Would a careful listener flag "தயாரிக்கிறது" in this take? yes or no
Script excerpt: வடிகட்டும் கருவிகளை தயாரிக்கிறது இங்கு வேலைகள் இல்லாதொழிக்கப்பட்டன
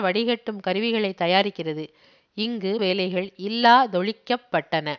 no